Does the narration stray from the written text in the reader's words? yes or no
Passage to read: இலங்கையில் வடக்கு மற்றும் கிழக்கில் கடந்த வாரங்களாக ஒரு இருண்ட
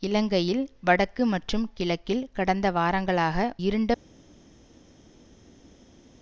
yes